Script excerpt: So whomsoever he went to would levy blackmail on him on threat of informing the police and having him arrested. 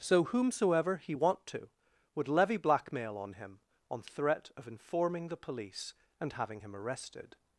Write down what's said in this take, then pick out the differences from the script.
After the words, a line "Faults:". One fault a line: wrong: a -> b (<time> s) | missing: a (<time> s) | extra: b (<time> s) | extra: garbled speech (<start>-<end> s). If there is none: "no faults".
So whomsoever he want to would levy blackmail on him on threat of informing the police and having him arrested.
Faults:
wrong: went -> want (1.1 s)